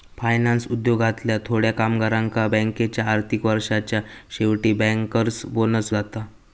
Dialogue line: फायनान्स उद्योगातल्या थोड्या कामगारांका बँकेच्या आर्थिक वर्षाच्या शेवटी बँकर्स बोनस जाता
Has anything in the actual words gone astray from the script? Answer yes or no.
no